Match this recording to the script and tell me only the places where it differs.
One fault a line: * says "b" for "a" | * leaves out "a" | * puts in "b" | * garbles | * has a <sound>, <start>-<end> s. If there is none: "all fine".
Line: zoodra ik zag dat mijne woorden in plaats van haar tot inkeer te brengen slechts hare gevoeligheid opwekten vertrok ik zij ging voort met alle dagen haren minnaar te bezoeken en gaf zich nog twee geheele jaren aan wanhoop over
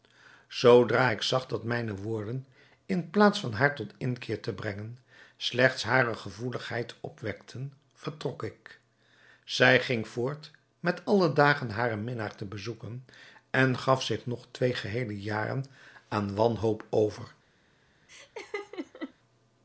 * has a laugh, 18.1-19.1 s